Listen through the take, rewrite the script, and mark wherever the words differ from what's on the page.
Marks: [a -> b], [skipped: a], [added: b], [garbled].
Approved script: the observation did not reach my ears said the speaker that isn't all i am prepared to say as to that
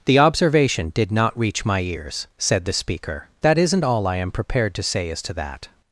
the observation did not reach my ears said the speaker that isn't all i am prepared to say as to that